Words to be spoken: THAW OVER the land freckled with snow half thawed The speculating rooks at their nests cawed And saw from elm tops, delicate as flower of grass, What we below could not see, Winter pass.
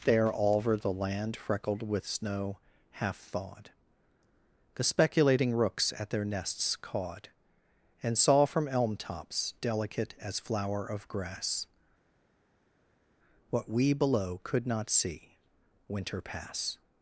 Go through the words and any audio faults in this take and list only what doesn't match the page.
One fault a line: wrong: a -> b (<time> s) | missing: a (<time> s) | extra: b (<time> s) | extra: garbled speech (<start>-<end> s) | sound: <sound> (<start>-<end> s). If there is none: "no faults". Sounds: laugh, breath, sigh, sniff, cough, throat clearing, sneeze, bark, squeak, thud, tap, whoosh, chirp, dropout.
wrong: THAW -> There all (0.0 s)